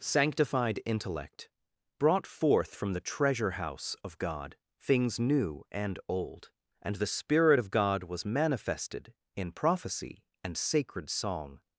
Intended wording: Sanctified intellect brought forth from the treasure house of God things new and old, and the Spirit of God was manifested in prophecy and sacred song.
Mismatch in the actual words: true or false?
false